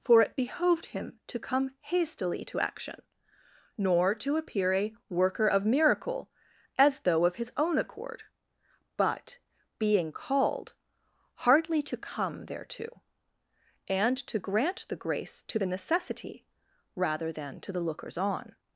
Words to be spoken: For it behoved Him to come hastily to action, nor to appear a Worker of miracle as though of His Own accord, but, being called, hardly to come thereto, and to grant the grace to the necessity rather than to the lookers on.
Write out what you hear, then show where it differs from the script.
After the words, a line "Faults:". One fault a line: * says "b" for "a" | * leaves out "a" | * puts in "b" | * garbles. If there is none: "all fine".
For it behoved Him to come hastily to action, nor to appear a Worker of miracle as though of His Own accord, but, being called, hardly to come thereto, and to grant the grace to the necessity rather than to the lookers on.
Faults:
all fine